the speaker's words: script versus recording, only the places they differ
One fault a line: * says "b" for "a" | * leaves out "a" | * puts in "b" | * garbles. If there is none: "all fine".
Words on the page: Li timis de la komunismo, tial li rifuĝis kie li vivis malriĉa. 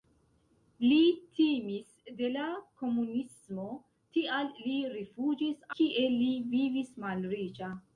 all fine